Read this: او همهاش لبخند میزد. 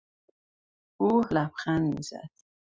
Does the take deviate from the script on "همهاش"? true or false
true